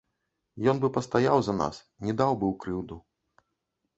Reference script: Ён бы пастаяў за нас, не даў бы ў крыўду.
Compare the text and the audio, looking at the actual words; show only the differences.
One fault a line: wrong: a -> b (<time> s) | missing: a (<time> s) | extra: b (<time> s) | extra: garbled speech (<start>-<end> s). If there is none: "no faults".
no faults